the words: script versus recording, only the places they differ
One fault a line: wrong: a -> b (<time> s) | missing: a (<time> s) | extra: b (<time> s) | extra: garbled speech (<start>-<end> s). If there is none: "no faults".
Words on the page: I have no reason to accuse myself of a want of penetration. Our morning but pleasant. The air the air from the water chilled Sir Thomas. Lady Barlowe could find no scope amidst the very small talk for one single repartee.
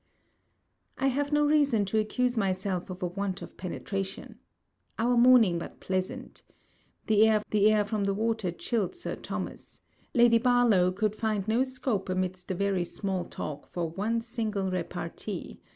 no faults